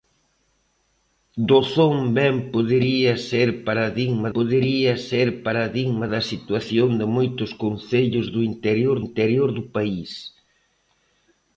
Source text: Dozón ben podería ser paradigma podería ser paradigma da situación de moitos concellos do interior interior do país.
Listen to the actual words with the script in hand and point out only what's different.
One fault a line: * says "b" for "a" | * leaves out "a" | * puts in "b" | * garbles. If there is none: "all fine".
all fine